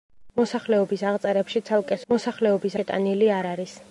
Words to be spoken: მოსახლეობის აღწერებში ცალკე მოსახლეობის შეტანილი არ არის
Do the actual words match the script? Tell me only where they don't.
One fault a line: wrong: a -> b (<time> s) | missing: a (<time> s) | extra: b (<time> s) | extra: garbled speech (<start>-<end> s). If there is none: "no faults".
no faults